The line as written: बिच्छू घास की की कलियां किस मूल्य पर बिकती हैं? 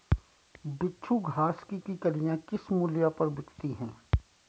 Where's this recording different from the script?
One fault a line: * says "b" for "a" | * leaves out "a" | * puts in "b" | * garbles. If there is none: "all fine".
all fine